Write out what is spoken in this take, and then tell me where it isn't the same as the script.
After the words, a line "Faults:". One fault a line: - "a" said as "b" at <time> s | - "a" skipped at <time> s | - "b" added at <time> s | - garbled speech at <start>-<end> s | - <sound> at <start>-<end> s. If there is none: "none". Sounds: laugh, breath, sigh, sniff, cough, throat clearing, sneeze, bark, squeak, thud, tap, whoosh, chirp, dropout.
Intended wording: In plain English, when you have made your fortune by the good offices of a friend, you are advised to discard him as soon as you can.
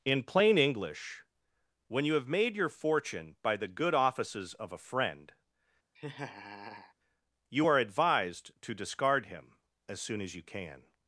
In plain English, when you have made your fortune by the good offices of a friend, you are advised to discard him as soon as you can.
Faults:
- laugh at 6.0-6.9 s